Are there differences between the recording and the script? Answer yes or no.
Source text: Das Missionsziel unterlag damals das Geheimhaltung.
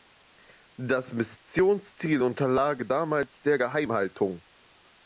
yes